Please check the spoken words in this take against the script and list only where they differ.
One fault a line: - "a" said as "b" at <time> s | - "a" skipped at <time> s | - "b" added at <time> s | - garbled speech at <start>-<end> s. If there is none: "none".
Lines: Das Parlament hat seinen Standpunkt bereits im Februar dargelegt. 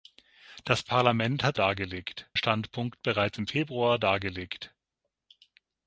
- "seinen" said as "dargelegt" at 1.5 s